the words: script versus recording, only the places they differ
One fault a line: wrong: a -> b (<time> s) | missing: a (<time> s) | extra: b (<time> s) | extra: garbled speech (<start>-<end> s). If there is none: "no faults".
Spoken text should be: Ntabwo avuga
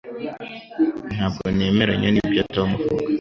extra: nemeranya nibyo Tom (1.6 s)